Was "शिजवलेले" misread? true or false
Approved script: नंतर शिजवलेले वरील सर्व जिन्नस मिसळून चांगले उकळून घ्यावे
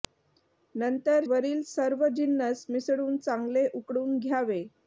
true